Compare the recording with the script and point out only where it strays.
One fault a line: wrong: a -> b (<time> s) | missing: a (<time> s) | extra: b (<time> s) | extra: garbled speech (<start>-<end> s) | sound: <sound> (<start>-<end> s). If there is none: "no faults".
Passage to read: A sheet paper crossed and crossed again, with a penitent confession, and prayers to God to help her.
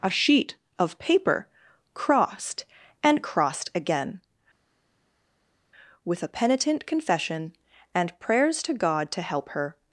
extra: of (0.8 s)